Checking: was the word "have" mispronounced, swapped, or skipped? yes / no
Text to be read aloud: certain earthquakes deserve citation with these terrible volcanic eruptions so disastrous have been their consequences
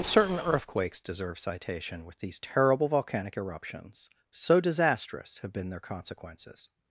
no